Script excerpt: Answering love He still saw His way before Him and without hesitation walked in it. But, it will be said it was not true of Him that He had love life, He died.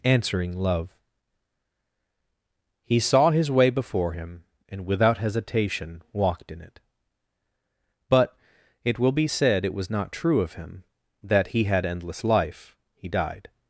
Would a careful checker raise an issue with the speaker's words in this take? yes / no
yes